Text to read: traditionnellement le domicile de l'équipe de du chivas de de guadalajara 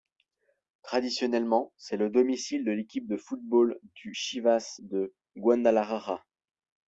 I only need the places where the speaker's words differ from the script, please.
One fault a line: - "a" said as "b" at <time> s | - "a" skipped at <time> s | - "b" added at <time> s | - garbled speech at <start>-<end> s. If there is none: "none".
- "c'est" added at 1.8 s
- "football" added at 3.2 s
- "de" skipped at 5.1 s